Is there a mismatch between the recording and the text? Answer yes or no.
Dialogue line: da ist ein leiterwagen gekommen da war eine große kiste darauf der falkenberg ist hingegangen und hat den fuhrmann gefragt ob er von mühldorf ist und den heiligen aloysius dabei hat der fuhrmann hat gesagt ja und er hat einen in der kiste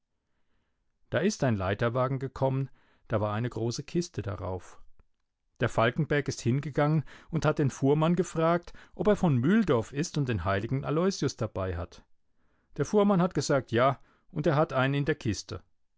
no